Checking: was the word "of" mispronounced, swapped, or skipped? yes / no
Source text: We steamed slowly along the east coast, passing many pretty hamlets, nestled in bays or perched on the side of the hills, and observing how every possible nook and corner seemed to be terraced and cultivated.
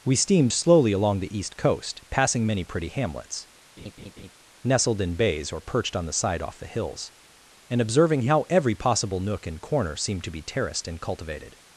yes